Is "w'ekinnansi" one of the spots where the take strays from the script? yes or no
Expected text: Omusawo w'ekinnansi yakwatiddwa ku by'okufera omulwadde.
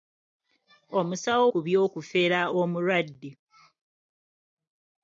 yes